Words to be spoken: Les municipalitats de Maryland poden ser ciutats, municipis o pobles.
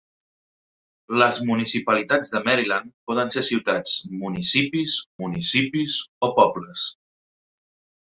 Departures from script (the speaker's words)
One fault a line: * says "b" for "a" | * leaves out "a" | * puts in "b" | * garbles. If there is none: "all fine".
* puts in "municipis"